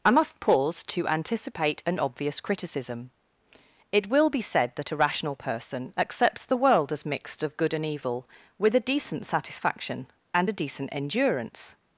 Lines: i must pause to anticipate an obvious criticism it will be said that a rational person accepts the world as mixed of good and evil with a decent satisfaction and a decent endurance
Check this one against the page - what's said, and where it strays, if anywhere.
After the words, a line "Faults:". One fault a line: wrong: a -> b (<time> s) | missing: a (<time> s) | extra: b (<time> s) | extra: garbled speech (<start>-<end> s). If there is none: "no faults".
i must pause to anticipate an obvious criticism it will be said that a rational person accepts the world as mixed of good and evil with a decent satisfaction and a decent endurance
Faults:
no faults